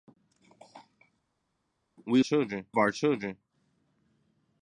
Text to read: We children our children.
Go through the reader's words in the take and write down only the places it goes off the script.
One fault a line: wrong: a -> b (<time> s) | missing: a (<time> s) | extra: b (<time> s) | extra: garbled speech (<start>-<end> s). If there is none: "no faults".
no faults